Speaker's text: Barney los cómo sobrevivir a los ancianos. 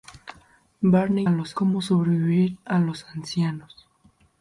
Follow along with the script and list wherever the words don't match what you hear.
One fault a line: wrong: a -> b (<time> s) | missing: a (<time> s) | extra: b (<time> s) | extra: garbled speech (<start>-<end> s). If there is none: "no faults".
no faults